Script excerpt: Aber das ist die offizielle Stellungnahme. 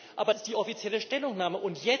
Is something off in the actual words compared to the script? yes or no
yes